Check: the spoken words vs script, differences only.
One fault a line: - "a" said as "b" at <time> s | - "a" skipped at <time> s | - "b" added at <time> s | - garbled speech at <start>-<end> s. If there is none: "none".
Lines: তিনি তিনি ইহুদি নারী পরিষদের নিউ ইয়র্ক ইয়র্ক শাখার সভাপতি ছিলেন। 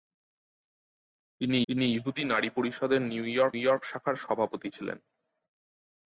none